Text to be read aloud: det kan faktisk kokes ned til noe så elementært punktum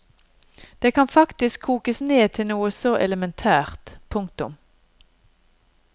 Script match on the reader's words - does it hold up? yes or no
yes